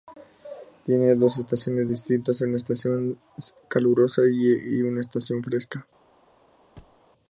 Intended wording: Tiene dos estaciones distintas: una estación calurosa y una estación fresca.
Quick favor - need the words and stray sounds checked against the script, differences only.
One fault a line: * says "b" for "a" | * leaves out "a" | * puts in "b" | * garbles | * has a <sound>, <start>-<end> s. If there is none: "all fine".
* has a thud, 6.8-7.0 s